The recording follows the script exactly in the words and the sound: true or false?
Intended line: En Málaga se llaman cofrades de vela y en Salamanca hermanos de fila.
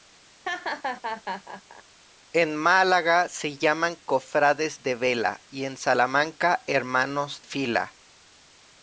false